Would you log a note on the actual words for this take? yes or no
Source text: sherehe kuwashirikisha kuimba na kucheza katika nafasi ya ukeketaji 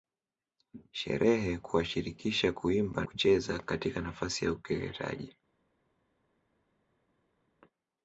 yes